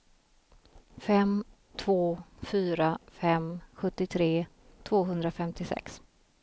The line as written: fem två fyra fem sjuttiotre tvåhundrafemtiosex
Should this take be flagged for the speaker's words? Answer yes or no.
no